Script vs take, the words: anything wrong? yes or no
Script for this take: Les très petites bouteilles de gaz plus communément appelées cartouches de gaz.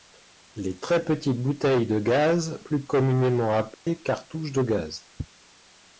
no